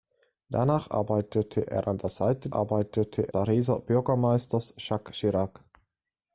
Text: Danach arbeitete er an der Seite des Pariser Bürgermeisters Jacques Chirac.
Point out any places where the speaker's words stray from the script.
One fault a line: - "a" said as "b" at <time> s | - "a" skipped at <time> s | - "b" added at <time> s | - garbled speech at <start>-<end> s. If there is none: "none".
- "des" said as "arbeitete" at 2.5 s